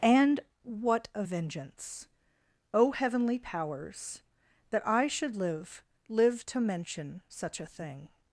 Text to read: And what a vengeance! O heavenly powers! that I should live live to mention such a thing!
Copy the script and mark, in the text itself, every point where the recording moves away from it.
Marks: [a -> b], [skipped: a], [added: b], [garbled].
And what a vengeance! O heavenly powers! that I should live live to mention such a thing!